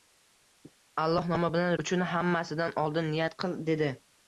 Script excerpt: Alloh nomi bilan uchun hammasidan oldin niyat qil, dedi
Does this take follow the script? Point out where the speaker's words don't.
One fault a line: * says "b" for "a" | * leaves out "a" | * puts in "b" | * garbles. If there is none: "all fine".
all fine